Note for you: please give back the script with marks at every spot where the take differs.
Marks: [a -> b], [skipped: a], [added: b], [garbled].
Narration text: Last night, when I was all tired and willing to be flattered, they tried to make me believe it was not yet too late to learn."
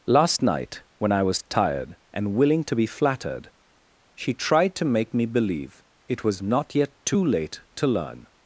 Last night, when I was [skipped: all] tired and willing to be flattered, [they -> she] tried to make me believe it was not yet too late to learn."